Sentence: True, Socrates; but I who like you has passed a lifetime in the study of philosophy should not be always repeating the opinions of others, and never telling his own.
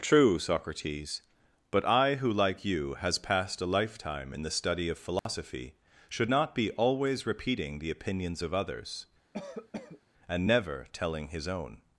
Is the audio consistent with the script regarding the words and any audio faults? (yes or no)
no